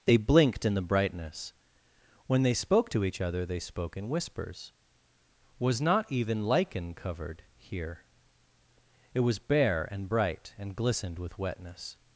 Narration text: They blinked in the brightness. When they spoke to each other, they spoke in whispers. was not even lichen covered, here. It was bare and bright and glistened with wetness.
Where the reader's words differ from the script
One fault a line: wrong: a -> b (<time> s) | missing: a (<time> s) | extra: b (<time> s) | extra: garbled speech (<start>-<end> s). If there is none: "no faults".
no faults